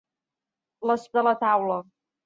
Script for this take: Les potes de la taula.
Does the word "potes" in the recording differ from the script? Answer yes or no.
yes